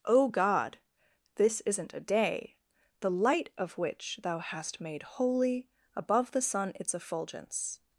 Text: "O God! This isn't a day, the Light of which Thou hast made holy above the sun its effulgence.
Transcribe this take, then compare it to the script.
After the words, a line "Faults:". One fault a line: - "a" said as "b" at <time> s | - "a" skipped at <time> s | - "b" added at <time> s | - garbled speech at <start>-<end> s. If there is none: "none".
"O God! This isn't a day, the Light of which Thou hast made holy above the sun its effulgence.
Faults:
none